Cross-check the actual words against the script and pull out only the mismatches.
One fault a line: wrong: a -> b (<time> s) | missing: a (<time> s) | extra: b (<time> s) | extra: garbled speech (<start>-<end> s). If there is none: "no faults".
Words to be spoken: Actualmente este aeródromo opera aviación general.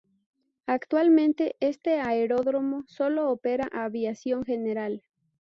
extra: solo (2.9 s)